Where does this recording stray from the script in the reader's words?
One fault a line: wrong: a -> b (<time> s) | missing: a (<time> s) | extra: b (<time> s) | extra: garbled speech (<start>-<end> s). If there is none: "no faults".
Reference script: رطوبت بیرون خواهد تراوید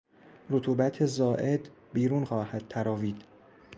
extra: زائد (1.1 s)